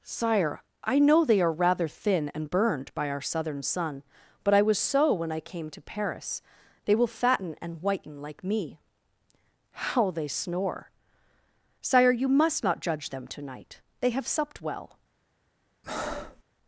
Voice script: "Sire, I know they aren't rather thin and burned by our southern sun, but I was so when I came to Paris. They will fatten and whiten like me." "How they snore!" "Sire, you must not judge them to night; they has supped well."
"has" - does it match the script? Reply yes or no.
no